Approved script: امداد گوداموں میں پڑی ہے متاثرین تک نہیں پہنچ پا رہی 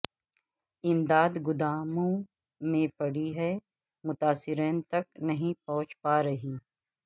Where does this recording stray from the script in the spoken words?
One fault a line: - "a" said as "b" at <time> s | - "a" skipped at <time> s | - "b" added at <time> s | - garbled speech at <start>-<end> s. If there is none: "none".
none